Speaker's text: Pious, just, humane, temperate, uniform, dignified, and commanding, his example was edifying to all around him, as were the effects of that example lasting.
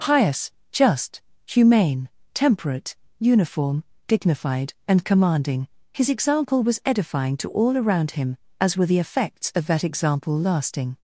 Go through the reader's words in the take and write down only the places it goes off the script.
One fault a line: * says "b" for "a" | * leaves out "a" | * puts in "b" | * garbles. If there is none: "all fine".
all fine